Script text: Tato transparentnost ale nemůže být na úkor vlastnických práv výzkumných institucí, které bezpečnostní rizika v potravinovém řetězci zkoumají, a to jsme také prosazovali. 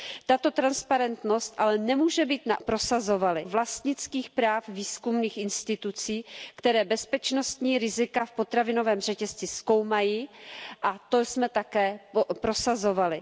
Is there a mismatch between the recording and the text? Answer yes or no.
yes